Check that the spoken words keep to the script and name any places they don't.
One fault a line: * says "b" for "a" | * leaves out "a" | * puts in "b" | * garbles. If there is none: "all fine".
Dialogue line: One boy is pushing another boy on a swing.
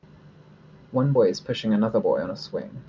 all fine